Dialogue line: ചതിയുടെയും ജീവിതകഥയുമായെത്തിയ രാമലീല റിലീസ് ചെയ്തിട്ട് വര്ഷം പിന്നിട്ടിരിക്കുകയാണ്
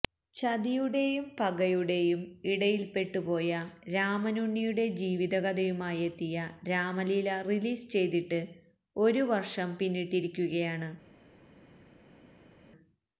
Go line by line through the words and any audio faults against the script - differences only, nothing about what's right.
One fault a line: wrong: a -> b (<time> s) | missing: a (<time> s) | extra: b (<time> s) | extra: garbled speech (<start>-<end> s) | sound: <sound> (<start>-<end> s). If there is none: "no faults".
extra: പകയുടെയും ഇടയില്പ്പെട്ടുപോയ രാമനുണ്ണിയുടെ (1.4 s)
extra: ഒരു (8.9 s)